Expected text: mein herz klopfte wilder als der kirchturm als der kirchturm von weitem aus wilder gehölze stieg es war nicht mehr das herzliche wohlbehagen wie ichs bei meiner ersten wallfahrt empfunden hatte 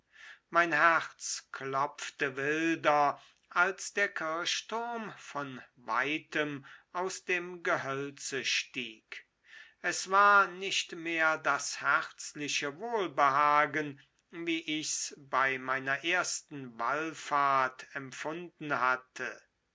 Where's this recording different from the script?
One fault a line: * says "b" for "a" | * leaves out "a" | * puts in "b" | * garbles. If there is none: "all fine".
* leaves out "als der kirchturm"
* says "dem" for "wilder"